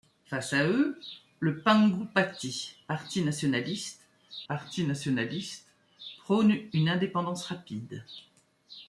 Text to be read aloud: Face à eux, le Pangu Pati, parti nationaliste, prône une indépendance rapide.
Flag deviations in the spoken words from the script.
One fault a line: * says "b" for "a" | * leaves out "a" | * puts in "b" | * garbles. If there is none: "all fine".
* puts in "parti nationaliste"